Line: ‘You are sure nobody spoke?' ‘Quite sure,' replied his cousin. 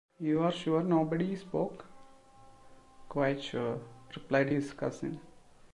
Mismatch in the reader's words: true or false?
false